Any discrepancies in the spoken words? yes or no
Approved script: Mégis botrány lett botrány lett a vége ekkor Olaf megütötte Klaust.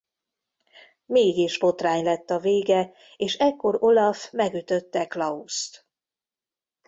yes